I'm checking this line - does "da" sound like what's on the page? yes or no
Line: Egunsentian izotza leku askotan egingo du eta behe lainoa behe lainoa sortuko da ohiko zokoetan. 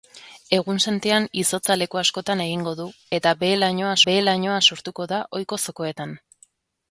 yes